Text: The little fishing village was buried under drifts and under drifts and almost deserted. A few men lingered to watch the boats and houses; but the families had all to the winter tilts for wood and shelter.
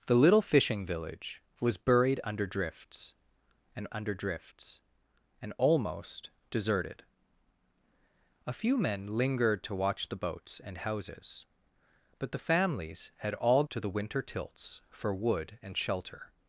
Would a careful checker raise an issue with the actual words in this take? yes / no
no